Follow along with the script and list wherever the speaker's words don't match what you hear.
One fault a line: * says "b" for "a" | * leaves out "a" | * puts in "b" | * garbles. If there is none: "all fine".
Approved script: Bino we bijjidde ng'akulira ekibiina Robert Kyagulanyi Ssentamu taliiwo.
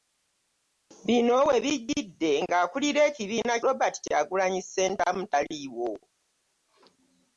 all fine